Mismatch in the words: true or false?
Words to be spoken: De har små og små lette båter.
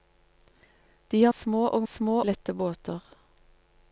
false